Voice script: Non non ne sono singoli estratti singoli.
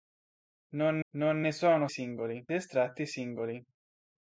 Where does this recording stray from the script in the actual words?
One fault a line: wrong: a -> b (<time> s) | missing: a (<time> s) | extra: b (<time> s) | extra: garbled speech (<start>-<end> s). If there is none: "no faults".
no faults